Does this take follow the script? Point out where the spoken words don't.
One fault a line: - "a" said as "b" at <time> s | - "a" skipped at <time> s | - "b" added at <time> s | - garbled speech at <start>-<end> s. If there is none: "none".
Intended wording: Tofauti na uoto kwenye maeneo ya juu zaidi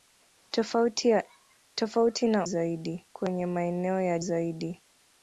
- "uoto" said as "zaidi" at 2.4 s
- "juu" skipped at 4.2 s